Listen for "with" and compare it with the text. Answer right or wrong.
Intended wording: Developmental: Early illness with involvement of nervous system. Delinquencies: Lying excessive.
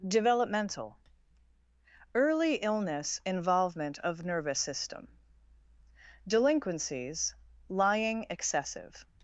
wrong